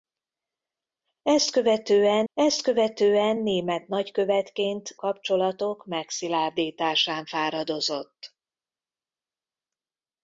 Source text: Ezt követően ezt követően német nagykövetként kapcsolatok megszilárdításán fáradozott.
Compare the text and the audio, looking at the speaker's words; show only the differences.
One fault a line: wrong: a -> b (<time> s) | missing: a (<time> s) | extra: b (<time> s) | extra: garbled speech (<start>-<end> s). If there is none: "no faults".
no faults